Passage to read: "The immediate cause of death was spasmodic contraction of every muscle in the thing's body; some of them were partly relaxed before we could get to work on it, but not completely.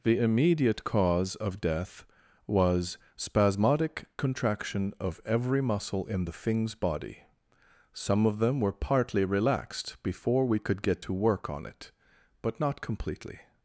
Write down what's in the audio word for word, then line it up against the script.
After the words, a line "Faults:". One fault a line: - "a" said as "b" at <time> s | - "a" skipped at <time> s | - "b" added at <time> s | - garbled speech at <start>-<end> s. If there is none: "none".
"The immediate cause of death was spasmodic contraction of every muscle in the thing's body; some of them were partly relaxed before we could get to work on it, but not completely.
Faults:
none